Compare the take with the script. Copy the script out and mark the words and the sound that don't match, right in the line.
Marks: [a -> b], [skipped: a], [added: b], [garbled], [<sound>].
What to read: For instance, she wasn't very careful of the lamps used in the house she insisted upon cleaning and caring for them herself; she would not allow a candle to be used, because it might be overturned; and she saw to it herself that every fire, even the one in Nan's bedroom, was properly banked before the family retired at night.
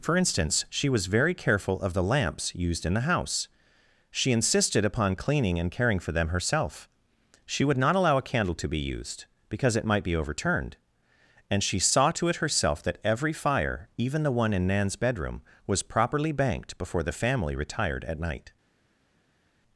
For instance, she [wasn't -> was] very careful of the lamps used in the house she insisted upon cleaning and caring for them herself; she would not allow a candle to be used, because it might be overturned; and she saw to it herself that every fire, even the one in Nan's bedroom, was properly banked before the family retired at night.